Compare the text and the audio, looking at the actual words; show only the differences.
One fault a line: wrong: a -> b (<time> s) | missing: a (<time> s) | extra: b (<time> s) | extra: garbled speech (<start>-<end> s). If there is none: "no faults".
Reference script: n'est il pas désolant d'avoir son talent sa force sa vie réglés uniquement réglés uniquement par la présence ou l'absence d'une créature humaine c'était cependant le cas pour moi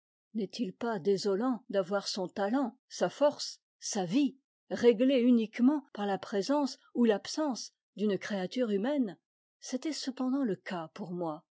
missing: réglés uniquement (5.8 s)